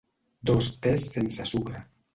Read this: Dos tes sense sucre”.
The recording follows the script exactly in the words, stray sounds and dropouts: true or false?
true